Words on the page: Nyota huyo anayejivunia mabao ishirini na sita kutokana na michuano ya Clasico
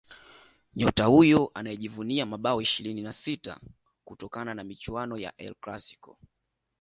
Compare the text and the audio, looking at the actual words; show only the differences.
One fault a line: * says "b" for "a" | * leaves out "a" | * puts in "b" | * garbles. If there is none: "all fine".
* puts in "El"